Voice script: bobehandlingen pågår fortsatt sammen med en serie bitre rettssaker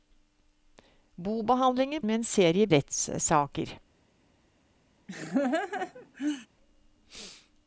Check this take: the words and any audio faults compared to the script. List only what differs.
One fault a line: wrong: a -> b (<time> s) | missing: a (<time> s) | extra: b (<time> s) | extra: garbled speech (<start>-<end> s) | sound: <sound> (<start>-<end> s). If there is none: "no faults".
missing: pågår fortsatt sammen (2.0 s)
missing: bitre (2.7 s)
sound: laugh (5.1-6.5 s)